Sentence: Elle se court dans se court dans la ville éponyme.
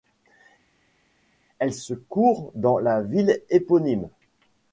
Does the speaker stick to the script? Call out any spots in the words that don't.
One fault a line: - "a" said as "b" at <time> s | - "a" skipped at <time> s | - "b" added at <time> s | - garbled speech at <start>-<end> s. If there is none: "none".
- "se court dans" skipped at 2.8 s